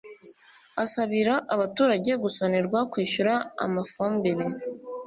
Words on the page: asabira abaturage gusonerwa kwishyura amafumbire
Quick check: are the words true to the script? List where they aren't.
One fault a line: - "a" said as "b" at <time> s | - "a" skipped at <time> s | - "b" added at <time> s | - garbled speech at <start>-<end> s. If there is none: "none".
none